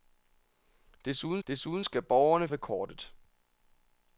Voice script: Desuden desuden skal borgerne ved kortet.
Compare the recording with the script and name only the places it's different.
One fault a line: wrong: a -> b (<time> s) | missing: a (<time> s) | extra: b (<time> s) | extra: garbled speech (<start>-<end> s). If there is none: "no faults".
no faults